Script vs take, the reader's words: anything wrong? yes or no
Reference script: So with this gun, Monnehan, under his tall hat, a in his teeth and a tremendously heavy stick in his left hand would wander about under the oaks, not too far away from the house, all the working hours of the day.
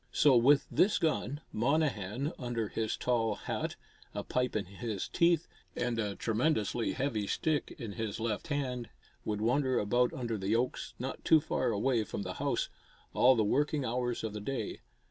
yes